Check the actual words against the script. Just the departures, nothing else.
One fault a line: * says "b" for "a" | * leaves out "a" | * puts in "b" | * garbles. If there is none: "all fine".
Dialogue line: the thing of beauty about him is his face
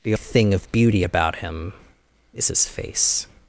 all fine